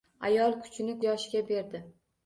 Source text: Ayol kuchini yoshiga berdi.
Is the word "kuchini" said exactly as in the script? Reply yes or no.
yes